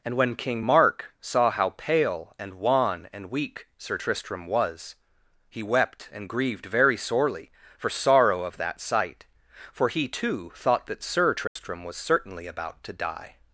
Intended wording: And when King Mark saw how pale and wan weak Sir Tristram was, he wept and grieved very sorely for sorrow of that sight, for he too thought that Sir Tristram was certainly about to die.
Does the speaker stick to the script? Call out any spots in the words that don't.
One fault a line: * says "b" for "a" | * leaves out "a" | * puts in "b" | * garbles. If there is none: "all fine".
* puts in "and"